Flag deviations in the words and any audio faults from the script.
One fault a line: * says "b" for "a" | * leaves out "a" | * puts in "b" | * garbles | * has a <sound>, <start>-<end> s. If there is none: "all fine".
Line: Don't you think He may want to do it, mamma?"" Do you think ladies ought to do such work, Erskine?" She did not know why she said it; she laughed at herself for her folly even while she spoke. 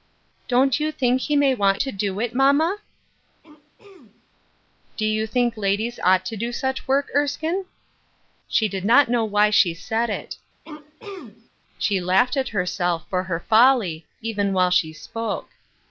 * has a throat clearing, 3.4-4.3 s
* has a throat clearing, 10.6-11.5 s